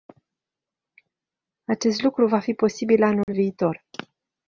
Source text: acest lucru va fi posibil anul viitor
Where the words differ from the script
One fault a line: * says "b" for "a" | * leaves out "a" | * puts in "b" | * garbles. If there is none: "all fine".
all fine